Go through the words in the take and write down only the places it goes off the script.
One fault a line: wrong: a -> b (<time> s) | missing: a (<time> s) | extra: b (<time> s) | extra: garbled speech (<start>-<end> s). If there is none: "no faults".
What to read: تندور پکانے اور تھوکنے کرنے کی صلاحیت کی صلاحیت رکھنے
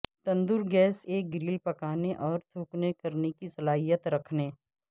extra: گیس ایک گرل (0.7 s)
missing: کی صلاحیت (4.1 s)